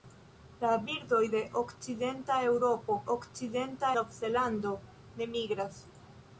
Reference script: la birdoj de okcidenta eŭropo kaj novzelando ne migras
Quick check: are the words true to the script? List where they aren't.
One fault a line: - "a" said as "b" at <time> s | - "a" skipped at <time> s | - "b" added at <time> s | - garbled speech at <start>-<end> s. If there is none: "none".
- "kaj" said as "okcidenta" at 3.1 s